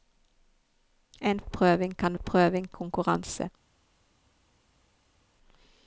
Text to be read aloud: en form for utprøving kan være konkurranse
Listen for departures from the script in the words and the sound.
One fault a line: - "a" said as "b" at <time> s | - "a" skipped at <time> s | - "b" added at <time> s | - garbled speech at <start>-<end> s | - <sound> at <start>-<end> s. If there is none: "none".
- "form for" skipped at 1.4 s
- "være" said as "utprøving" at 2.1 s